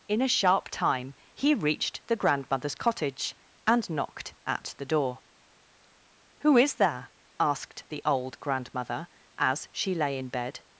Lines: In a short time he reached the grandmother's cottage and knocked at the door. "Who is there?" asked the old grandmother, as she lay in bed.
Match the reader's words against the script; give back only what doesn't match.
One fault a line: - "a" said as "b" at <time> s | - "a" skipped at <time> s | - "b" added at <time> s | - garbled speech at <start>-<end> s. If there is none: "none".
- "short" said as "sharp" at 0.3 s